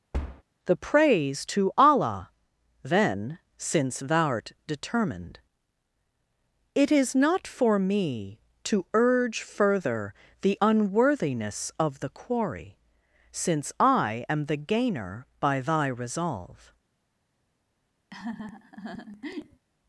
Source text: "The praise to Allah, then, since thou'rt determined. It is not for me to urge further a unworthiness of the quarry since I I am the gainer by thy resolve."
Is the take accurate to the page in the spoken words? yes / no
no